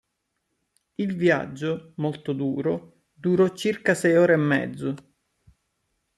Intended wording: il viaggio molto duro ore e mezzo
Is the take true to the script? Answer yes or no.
no